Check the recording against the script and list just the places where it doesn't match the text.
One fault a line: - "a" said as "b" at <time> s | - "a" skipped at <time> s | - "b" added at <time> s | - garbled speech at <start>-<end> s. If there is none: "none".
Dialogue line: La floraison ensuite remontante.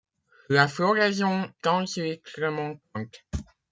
none